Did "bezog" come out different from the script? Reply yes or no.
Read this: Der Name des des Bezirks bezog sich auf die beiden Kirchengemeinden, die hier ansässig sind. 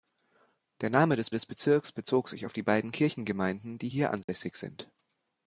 no